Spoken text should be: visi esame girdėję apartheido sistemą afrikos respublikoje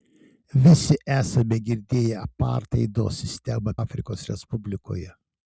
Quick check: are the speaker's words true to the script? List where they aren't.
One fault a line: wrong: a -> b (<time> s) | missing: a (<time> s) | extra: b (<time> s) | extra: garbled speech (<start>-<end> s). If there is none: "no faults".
no faults